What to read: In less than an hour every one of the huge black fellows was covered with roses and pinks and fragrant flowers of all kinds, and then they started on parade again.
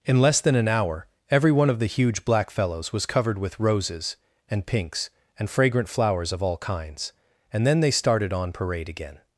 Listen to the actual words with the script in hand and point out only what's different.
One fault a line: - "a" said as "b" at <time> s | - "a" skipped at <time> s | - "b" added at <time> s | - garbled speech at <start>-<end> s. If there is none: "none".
none